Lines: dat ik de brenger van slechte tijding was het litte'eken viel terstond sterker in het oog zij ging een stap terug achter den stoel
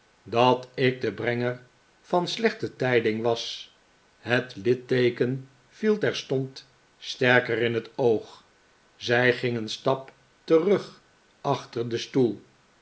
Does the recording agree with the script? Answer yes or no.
yes